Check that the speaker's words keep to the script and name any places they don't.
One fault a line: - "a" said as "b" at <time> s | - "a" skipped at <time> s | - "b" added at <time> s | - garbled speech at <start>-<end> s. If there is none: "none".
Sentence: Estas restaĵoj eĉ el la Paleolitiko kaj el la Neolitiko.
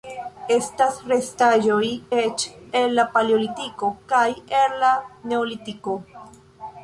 none